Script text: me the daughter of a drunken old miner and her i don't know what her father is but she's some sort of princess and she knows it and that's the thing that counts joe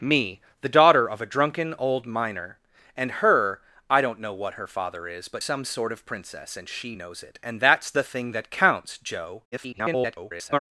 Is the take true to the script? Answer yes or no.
no